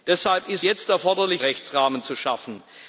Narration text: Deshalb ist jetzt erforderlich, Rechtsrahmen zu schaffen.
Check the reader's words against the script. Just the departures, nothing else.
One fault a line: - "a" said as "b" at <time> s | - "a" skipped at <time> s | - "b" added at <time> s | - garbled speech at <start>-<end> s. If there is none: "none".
none